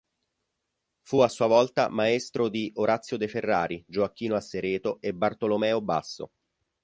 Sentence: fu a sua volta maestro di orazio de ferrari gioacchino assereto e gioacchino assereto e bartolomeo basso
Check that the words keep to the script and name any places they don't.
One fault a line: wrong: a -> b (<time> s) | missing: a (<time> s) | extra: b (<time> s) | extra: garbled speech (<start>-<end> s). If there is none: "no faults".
missing: gioacchino assereto e (5.1 s)